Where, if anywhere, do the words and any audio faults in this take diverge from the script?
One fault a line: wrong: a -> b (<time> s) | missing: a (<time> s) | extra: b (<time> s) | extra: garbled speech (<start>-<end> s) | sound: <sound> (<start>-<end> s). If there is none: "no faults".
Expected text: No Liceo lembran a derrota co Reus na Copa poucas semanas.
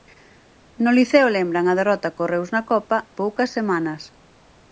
no faults